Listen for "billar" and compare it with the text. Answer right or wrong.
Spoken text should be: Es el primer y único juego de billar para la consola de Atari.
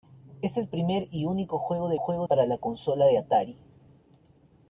wrong